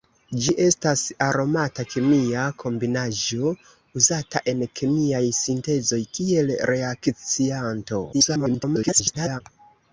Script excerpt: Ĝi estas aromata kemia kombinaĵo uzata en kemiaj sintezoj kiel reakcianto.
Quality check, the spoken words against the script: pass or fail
fail